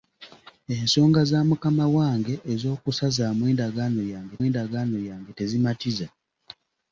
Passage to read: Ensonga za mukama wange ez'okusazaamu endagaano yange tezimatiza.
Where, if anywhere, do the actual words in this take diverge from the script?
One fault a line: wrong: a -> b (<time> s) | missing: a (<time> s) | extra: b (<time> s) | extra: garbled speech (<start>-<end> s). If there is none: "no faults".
extra: endagaano yange (4.5 s)